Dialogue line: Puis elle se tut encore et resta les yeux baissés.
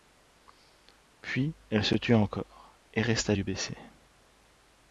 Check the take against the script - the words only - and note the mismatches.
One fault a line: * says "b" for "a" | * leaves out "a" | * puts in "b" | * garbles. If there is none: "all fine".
* leaves out "les"